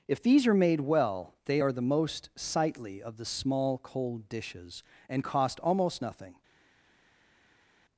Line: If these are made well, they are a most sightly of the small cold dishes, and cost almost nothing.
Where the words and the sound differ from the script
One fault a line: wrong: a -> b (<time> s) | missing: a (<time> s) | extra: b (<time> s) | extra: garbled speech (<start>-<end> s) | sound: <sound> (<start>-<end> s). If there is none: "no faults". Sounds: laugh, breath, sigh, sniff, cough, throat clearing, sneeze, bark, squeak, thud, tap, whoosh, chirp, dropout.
wrong: a -> the (1.7 s)